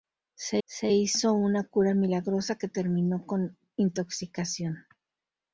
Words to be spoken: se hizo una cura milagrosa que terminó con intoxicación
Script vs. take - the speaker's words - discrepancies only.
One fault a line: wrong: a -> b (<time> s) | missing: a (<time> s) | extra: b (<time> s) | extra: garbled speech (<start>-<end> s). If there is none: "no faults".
extra: se (0.6 s)